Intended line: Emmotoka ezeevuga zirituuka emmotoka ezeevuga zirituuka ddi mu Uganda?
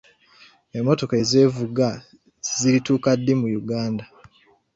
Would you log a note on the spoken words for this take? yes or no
yes